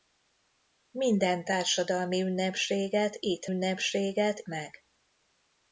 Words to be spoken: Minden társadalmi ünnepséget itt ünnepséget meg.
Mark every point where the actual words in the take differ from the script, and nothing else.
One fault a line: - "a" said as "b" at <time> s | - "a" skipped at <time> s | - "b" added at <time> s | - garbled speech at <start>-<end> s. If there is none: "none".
none